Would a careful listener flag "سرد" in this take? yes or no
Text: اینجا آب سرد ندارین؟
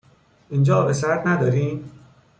no